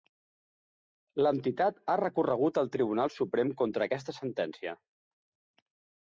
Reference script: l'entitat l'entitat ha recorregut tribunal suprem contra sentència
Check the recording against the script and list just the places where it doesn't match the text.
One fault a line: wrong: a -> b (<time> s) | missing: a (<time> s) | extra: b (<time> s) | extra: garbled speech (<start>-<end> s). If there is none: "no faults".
missing: l'entitat (1.8 s)
extra: al (2.6 s)
extra: aquesta (3.9 s)